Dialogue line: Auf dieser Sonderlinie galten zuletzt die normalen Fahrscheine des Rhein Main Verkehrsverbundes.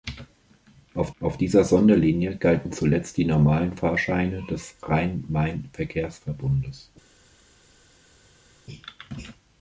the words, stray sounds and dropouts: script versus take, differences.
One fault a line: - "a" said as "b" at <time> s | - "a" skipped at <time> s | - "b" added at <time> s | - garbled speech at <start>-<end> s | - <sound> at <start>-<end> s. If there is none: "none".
- "auf" added at 1.2 s